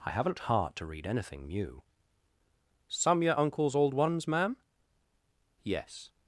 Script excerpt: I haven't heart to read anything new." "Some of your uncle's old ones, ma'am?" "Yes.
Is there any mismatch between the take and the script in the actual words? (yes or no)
yes